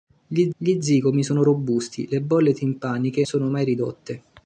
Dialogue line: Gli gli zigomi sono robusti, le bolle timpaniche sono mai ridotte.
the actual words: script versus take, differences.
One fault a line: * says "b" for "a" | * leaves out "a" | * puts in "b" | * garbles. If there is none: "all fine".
all fine